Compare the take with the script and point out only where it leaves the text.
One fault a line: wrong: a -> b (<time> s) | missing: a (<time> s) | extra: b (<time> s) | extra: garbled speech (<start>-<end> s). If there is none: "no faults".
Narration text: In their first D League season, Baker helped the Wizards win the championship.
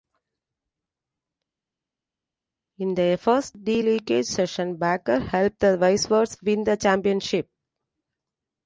no faults